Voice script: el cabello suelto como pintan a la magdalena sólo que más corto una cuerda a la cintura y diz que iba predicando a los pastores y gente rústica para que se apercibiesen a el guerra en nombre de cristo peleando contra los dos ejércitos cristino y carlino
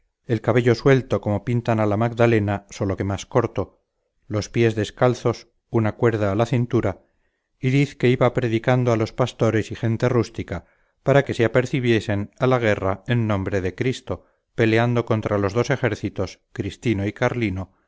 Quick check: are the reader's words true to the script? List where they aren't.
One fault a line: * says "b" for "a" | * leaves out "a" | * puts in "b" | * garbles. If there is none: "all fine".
* puts in "los pies descalzos"
* says "la" for "el"